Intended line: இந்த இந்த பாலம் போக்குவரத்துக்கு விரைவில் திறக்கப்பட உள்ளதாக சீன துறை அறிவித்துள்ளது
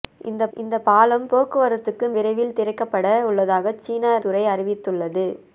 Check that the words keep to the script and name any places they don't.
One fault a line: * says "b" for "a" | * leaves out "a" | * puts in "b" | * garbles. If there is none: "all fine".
all fine